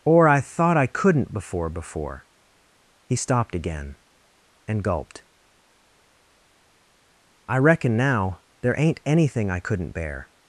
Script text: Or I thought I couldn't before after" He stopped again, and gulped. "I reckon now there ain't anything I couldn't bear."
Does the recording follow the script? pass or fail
fail